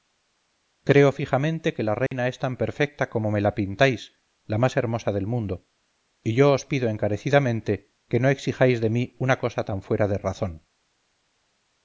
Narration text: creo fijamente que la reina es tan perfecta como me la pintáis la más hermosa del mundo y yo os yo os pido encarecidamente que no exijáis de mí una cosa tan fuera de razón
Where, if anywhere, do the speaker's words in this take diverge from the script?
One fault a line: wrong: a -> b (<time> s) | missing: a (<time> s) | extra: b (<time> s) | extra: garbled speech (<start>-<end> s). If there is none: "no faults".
missing: yo os (6.7 s)